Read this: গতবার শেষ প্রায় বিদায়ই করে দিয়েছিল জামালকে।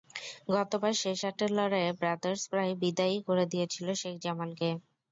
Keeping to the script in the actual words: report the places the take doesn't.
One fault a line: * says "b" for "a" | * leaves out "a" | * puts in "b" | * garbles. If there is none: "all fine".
* puts in "আটের লড়াইয়ে ব্রাদার্স"
* puts in "শেখ"